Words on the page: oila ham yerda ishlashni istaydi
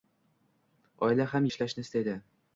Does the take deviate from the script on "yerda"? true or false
true